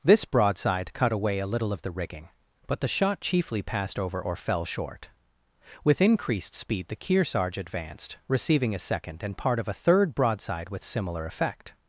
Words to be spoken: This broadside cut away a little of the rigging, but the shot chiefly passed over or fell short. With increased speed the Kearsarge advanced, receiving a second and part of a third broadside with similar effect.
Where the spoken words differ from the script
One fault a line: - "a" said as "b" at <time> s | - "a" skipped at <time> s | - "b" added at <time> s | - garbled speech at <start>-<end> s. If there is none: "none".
none